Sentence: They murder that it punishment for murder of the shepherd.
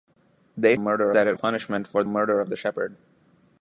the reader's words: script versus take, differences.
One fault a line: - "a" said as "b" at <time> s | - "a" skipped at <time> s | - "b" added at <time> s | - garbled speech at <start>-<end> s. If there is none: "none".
none